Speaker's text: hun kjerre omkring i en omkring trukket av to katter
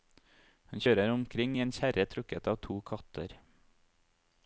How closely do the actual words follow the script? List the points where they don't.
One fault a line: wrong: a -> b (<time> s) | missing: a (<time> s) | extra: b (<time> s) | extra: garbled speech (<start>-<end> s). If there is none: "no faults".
wrong: kjerre -> kjører (0.8 s)
wrong: omkring -> kjerre (1.8 s)